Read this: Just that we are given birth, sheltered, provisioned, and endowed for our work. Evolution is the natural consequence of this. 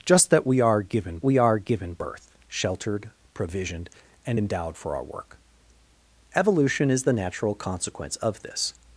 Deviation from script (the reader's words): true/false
true